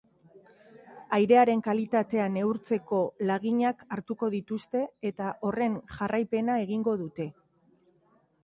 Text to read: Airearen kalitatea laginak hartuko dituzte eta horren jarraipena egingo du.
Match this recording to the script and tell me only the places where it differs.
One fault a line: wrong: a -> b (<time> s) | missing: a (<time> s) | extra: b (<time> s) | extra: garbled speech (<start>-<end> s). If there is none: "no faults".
extra: neurtzeko (2.4 s)
wrong: du -> dute (7.0 s)